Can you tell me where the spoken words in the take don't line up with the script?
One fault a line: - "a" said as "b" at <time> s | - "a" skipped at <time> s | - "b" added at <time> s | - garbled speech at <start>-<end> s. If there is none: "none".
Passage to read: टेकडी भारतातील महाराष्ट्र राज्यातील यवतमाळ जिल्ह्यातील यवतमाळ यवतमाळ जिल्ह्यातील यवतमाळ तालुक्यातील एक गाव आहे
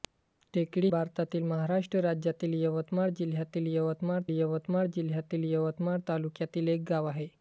none